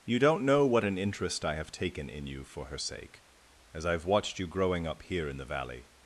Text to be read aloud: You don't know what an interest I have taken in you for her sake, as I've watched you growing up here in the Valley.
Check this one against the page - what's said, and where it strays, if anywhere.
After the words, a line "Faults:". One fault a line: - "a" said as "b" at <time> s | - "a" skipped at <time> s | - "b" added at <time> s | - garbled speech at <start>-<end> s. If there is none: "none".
You don't know what an interest I have taken in you for her sake, as I've watched you growing up here in the Valley.
Faults:
none